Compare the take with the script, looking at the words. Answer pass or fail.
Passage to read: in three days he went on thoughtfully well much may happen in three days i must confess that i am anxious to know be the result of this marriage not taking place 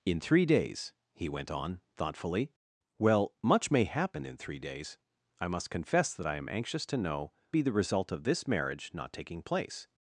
pass